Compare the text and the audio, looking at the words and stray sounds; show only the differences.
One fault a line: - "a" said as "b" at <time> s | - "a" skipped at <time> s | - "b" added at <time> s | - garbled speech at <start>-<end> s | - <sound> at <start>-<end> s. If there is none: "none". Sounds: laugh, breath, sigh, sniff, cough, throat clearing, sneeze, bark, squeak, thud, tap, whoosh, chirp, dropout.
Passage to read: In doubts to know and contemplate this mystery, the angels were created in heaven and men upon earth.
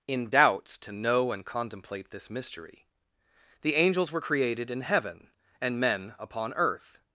none